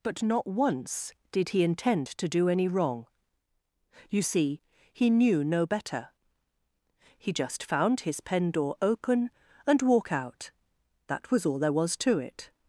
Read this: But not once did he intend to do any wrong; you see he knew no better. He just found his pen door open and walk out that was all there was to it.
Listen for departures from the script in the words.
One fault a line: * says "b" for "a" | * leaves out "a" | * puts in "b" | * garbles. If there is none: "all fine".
all fine